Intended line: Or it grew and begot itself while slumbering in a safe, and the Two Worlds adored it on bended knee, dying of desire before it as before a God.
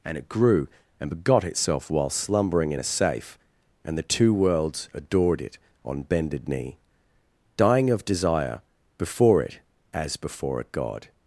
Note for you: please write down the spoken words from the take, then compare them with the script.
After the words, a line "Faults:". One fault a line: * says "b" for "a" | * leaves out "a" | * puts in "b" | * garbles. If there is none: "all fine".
And it grew and begot itself while slumbering in a safe, and the Two Worlds adored it on bended knee, dying of desire before it as before a God.
Faults:
* says "And" for "Or"